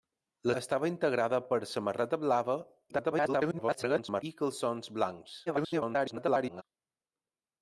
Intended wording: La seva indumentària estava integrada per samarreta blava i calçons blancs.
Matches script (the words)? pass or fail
fail